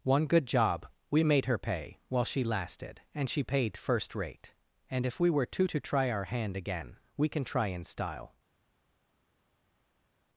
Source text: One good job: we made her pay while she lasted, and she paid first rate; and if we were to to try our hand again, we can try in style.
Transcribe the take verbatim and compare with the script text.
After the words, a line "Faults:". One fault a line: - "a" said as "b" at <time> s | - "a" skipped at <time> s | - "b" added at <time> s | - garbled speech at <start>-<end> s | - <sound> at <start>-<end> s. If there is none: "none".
One good job: we made her pay while she lasted, and she paid first rate; and if we were to to try our hand again, we can try in style.
Faults:
none